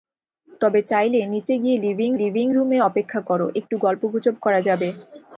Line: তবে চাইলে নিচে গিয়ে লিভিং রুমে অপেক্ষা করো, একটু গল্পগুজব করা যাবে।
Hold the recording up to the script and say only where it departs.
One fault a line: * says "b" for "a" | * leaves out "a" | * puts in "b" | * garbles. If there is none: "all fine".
* puts in "লিভিং"